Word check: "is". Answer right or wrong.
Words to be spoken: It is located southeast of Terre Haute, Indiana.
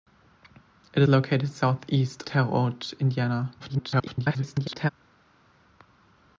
wrong